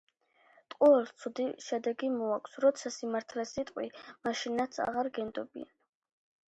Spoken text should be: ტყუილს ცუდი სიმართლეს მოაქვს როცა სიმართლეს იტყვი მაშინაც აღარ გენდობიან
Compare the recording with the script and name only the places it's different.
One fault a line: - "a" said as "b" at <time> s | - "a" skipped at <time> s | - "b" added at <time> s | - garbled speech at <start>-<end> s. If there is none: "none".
- "სიმართლეს" said as "შედეგი" at 1.6 s